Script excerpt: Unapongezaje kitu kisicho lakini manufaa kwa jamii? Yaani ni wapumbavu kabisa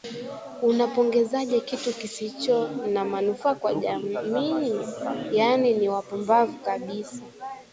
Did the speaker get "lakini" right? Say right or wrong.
wrong